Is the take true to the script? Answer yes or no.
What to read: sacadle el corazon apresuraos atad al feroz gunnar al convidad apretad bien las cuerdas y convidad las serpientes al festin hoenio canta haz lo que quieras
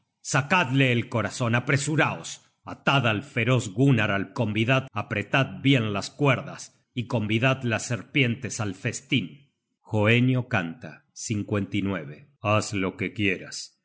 yes